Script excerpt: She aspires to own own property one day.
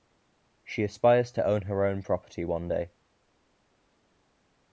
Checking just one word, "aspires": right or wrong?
right